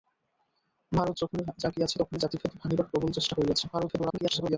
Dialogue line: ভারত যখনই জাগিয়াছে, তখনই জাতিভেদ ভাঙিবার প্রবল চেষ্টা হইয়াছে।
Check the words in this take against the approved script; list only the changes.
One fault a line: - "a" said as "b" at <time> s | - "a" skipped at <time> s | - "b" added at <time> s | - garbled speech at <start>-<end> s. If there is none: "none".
- garbled speech at 3.7-4.6 s